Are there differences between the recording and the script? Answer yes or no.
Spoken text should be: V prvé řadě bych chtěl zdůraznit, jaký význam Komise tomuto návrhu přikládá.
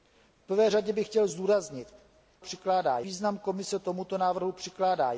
yes